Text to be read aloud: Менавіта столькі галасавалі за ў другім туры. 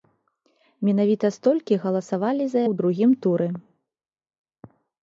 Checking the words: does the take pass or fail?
pass